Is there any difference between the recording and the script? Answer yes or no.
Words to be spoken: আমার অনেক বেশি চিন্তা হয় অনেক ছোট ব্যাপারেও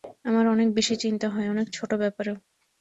no